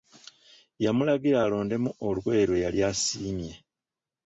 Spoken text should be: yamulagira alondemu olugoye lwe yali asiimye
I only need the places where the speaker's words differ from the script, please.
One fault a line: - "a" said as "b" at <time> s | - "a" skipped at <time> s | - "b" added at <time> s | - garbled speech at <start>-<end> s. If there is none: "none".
none